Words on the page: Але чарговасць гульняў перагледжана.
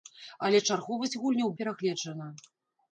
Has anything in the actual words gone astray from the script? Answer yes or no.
no